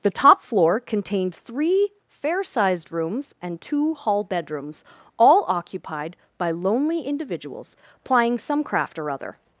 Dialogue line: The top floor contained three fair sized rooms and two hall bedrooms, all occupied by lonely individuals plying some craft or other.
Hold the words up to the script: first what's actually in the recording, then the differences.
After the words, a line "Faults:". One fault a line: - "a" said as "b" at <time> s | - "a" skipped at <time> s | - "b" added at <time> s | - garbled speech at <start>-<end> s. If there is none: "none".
The top floor contained three fair sized rooms and two hall bedrooms, all occupied by lonely individuals plying some craft or other.
Faults:
none